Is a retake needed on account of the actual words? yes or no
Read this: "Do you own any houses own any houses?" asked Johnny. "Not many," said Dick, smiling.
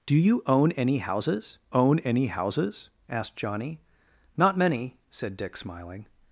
no